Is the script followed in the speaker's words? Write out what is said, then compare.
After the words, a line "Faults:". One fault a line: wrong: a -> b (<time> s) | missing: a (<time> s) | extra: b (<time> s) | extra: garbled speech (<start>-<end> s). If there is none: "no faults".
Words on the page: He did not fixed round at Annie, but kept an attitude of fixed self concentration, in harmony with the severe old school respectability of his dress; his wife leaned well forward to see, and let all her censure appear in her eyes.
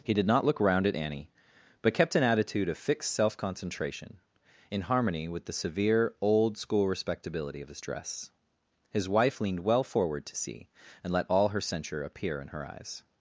He did not look round at Annie, but kept an attitude of fixed self concentration, in harmony with the severe old school respectability of his dress; his wife leaned well forward to see, and let all her censure appear in her eyes.
Faults:
wrong: fixed -> look (0.5 s)